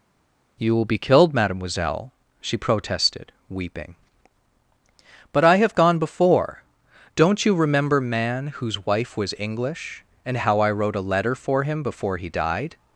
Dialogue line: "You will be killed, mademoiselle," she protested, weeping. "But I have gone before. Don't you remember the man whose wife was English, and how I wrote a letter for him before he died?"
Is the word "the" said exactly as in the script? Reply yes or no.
no